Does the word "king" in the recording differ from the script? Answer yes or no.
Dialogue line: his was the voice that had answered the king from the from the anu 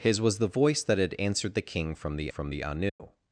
no